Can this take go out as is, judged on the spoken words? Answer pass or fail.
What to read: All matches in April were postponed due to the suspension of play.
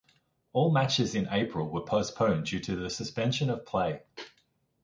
pass